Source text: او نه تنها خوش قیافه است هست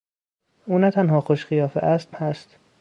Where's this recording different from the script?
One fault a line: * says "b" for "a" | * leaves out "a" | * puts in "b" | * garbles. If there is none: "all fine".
all fine